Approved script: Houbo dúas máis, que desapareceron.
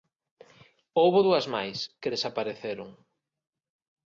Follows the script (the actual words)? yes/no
yes